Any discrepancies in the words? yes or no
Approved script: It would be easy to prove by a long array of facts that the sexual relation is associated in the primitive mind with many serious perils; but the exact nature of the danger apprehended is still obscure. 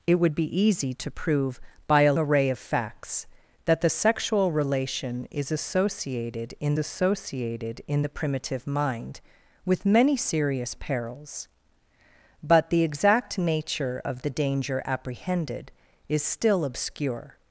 yes